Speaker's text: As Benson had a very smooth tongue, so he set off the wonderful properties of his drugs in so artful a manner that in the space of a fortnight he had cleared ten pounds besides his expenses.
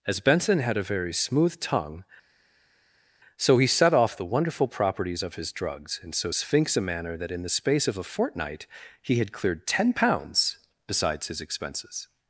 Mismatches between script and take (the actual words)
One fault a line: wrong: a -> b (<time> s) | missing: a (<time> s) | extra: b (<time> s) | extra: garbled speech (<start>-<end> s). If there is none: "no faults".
wrong: artful -> sphinx (6.3 s)